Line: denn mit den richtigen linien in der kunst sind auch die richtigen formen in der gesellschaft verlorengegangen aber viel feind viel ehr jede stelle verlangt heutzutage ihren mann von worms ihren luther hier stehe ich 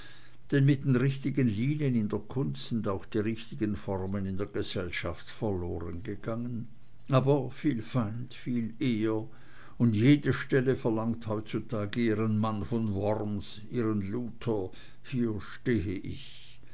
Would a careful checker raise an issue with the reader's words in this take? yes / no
yes